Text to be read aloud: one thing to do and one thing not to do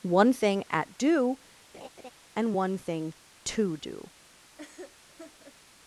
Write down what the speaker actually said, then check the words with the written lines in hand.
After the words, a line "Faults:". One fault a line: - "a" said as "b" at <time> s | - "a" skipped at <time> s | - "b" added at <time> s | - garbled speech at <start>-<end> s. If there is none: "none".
one thing at do and one thing to do
Faults:
- "to" said as "at" at 0.7 s
- "not" skipped at 3.1 s